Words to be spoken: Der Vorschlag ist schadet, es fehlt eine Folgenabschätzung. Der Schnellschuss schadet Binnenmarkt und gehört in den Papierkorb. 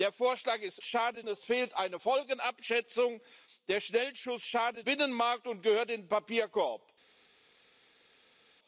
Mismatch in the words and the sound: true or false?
false